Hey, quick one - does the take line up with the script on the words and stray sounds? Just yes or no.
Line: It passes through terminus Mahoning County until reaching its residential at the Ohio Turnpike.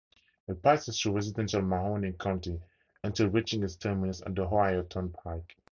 no